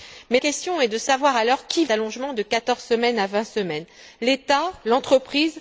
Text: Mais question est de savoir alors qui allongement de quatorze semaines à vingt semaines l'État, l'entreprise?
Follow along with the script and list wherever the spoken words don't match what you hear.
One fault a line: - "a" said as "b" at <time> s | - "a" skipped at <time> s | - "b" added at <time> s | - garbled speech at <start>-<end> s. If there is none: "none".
none